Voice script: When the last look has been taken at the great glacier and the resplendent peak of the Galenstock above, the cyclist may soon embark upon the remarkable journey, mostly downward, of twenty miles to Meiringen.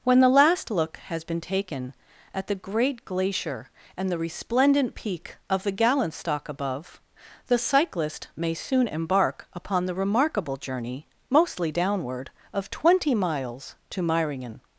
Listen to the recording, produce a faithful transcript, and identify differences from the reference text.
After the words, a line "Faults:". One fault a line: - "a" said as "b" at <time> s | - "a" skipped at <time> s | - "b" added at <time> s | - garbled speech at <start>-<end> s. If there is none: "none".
When the last look has been taken at the great glacier and the resplendent peak of the Galenstock above, the cyclist may soon embark upon the remarkable journey, mostly downward, of twenty miles to Meiringen.
Faults:
none